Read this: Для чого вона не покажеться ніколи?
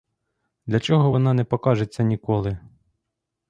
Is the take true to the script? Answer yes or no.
yes